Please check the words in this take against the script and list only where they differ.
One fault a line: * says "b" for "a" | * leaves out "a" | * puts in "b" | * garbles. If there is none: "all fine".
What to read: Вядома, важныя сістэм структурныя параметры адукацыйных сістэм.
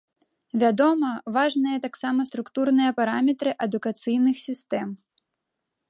* says "таксама" for "сістэм"